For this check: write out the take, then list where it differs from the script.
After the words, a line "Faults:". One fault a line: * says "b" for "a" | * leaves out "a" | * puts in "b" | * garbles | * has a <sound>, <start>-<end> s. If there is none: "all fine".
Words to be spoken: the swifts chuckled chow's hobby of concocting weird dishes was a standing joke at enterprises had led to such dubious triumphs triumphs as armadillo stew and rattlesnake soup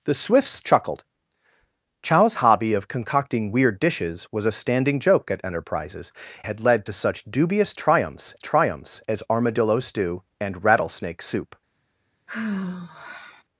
the swifts chuckled chow's hobby of concocting weird dishes was a standing joke at enterprises had led to such dubious triumphs triumphs as armadillo stew and rattlesnake soup
Faults:
* has a sigh, 12.3-13.4 s